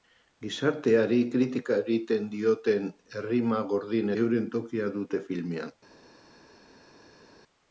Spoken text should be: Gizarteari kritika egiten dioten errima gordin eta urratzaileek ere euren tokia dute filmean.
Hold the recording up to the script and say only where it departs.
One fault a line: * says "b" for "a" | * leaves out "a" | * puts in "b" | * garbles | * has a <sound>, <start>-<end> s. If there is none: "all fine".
* leaves out "eta urratzaileek ere"